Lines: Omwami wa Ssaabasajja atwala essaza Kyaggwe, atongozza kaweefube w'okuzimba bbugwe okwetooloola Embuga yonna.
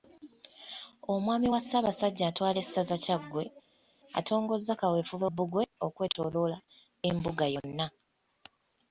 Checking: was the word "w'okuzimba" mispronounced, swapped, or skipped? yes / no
yes